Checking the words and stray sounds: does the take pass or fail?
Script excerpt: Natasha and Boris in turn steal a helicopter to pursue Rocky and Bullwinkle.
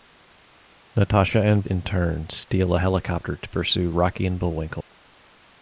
fail